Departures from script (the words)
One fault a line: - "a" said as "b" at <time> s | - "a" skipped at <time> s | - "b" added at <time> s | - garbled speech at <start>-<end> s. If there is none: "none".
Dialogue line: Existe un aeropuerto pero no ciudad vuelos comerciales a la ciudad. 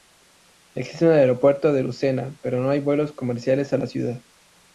- "de Lucena" added at 1.7 s
- "ciudad" said as "hay" at 2.7 s